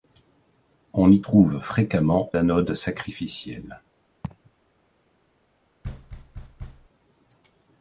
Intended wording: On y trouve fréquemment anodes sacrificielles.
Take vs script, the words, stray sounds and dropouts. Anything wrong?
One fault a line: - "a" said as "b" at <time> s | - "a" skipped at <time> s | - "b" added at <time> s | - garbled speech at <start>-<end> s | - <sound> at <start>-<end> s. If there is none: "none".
- laugh at 4.2-4.5 s
- thud at 5.8-6.9 s